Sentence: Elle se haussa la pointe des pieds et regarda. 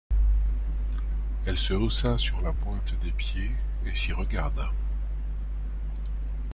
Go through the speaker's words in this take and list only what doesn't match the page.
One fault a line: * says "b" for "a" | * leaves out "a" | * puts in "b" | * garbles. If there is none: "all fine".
* puts in "sur"
* puts in "s'y"